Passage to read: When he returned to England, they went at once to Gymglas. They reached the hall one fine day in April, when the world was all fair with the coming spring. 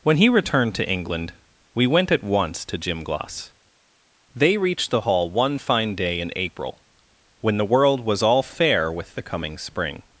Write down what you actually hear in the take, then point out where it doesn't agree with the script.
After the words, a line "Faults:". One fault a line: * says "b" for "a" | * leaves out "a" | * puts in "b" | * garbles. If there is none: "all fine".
When he returned to England, we went at once to Gymglas. They reached the hall one fine day in April, when the world was all fair with the coming spring.
Faults:
* says "we" for "they"